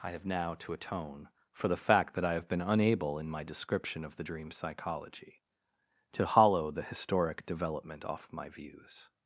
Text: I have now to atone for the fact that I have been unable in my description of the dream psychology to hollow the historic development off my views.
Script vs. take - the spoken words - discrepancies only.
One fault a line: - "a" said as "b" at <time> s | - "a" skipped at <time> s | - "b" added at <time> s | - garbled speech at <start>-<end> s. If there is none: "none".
none